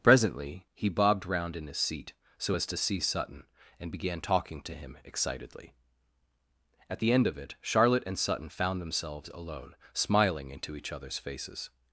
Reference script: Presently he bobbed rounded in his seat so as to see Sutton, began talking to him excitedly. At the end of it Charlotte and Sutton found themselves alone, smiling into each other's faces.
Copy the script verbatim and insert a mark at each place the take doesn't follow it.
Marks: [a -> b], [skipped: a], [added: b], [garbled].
Presently he bobbed [rounded -> round] in his seat so as to see Sutton, [added: and] began talking to him excitedly. At the end of it Charlotte and Sutton found themselves alone, smiling into each other's faces.